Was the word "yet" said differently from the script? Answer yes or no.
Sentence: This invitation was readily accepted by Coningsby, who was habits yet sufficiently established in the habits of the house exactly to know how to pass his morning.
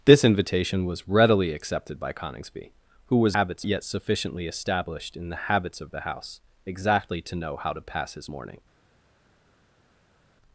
no